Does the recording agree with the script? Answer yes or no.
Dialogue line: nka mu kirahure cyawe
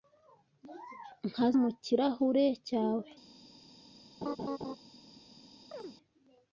yes